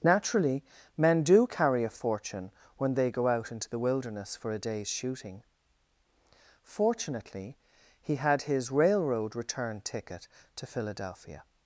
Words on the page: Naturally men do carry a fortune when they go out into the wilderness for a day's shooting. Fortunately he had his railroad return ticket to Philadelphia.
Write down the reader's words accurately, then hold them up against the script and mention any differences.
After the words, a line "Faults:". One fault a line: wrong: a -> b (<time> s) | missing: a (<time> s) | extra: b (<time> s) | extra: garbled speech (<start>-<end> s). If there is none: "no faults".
Naturally men do carry a fortune when they go out into the wilderness for a day's shooting. Fortunately he had his railroad return ticket to Philadelphia.
Faults:
no faults